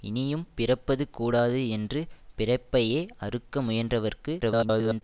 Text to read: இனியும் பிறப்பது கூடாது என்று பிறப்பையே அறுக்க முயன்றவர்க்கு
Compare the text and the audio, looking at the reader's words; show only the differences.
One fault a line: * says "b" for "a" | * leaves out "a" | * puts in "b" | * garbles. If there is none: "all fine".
* garbles